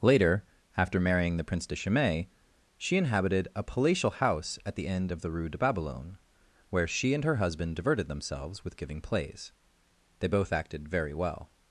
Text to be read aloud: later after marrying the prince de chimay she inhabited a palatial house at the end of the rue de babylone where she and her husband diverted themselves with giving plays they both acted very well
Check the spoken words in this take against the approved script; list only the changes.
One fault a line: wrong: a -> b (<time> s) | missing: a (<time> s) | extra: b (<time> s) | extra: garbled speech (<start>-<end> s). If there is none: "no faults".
no faults